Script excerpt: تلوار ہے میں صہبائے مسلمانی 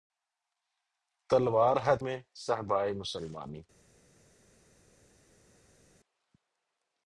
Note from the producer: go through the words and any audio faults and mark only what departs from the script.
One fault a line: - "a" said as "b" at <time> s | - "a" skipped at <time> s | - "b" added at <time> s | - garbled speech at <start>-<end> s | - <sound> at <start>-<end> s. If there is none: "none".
none